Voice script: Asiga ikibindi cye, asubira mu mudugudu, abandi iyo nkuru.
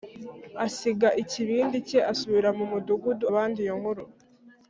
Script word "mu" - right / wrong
right